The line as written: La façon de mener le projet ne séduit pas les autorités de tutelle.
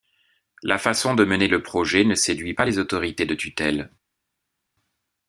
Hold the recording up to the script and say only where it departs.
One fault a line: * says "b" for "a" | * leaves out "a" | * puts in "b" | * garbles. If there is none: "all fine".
all fine